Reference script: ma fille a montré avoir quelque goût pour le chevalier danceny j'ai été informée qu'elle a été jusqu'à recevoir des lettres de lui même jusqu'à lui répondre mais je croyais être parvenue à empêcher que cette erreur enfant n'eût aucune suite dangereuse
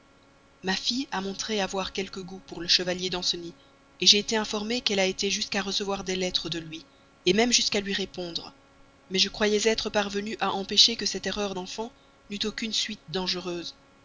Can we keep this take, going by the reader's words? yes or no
yes